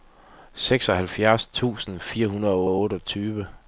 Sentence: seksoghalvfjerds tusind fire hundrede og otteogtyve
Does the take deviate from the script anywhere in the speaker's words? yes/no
yes